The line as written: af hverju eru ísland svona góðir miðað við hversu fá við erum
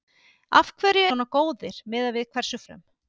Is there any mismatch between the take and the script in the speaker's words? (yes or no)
yes